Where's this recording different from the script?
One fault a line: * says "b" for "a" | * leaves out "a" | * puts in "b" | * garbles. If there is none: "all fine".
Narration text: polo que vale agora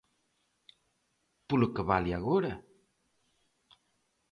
all fine